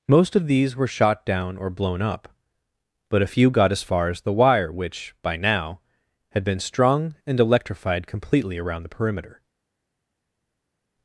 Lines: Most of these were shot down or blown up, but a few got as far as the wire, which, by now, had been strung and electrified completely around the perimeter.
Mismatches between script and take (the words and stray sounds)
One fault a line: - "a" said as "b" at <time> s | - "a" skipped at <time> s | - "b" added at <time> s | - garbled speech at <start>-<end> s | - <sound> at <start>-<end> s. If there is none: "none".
none